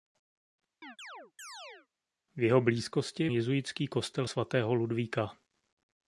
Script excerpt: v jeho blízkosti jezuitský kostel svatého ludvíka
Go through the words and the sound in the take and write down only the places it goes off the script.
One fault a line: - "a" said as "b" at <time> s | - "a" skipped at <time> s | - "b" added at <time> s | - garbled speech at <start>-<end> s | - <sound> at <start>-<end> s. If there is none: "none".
- chirp at 0.8-1.9 s